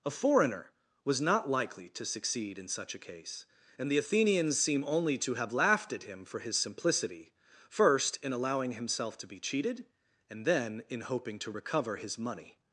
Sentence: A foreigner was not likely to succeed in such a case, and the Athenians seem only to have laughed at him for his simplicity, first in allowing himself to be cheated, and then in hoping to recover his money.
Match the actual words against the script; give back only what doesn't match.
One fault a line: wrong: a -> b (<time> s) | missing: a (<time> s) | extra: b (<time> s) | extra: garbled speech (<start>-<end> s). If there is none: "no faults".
no faults